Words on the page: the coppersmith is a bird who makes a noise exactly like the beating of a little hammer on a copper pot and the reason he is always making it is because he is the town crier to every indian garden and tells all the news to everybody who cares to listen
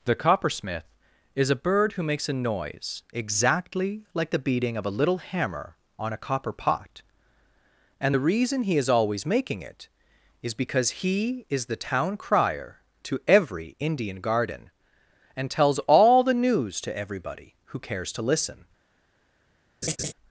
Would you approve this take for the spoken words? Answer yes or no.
yes